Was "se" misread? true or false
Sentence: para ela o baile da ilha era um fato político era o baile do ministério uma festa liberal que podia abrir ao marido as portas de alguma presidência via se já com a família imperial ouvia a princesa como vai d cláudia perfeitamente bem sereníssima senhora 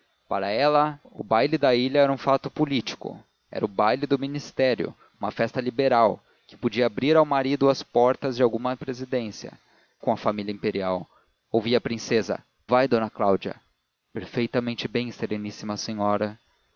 true